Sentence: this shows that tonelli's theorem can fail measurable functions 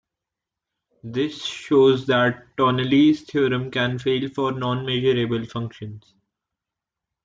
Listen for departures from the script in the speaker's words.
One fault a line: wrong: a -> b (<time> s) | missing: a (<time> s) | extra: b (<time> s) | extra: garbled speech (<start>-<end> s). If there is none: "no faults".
extra: for non (4.3 s)